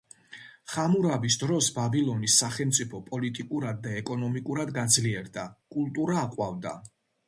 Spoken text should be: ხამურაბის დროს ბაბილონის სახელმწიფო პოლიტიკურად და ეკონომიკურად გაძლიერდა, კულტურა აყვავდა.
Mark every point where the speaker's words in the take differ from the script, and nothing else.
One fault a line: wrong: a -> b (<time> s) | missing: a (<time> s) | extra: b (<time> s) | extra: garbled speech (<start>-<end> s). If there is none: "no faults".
no faults